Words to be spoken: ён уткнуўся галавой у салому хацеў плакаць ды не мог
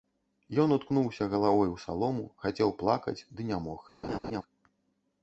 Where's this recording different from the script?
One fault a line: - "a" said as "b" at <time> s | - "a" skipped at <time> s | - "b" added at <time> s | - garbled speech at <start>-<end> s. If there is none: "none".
none